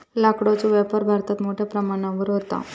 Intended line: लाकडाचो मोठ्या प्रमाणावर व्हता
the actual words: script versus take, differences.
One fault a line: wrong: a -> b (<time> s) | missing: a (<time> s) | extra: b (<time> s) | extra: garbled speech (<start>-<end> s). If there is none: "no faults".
extra: व्यापार भारतात (0.7 s)